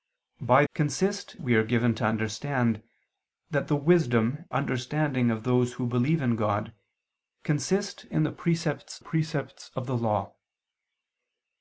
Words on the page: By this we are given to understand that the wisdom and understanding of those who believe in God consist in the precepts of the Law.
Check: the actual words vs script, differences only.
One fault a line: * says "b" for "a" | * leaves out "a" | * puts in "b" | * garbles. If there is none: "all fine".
* says "consist" for "this"
* leaves out "and"
* puts in "precepts"